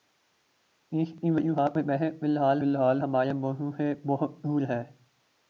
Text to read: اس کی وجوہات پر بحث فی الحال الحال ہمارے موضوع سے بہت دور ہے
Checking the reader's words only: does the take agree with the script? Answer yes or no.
yes